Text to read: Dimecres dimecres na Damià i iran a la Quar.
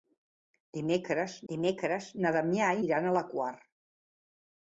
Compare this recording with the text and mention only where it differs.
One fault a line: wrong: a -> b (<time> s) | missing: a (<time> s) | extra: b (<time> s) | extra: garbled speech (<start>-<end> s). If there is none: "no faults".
no faults